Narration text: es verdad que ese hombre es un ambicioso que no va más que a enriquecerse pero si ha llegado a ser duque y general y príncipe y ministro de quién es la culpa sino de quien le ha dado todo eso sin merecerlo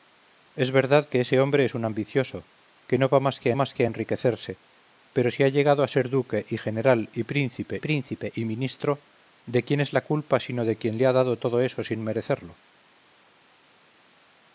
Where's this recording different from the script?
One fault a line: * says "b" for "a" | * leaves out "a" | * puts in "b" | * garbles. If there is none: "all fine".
* puts in "más que"
* puts in "príncipe"